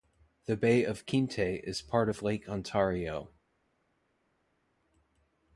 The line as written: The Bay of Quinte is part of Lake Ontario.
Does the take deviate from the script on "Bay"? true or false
false